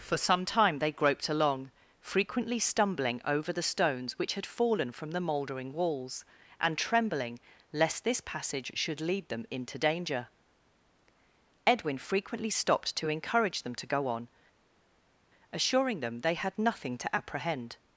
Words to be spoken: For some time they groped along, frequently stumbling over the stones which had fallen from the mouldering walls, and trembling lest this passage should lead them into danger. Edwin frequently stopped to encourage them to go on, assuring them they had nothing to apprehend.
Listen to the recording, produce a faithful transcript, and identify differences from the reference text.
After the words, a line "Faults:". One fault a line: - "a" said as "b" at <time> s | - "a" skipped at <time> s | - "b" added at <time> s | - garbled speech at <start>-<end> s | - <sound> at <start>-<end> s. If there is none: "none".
For some time they groped along, frequently stumbling over the stones which had fallen from the mouldering walls, and trembling lest this passage should lead them into danger. Edwin frequently stopped to encourage them to go on, assuring them they had nothing to apprehend.
Faults:
none